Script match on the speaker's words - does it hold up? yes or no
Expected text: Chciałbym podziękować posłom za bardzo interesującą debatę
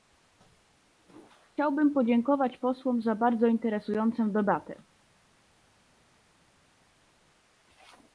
yes